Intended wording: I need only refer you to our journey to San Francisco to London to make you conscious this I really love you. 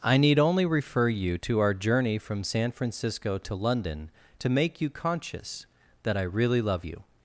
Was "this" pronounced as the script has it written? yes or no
no